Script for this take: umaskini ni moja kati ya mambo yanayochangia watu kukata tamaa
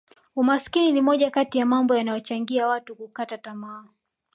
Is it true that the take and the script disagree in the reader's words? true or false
false